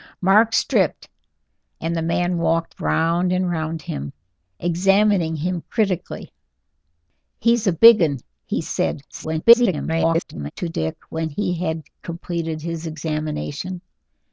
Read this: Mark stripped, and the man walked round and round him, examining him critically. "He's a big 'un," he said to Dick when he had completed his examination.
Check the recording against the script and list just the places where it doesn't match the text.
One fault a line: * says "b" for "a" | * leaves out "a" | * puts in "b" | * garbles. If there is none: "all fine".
* garbles